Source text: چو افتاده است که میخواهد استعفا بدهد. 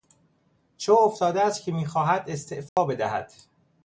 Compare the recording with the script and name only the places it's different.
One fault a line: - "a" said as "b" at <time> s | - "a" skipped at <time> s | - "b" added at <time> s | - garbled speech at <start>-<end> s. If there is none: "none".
none